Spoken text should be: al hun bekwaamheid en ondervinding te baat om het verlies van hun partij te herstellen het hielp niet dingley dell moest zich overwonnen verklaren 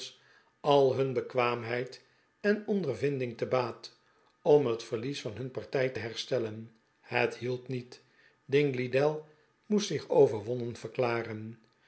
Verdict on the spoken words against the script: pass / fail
pass